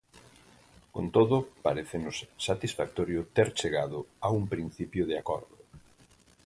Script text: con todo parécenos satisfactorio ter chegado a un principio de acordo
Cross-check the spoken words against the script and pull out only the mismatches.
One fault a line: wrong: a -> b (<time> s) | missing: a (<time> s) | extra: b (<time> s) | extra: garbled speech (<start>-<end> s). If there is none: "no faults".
no faults